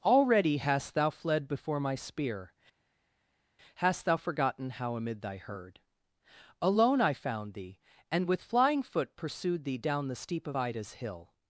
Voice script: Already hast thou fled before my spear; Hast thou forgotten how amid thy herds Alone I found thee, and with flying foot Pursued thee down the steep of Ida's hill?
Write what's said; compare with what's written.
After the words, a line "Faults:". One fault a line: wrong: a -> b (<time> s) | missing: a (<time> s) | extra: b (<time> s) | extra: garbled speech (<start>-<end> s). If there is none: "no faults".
Already hast thou fled before my spear; Hast thou forgotten how amid thy herd Alone I found thee, and with flying foot Pursued thee down the steep of Ida's hill?
Faults:
wrong: herds -> herd (5.4 s)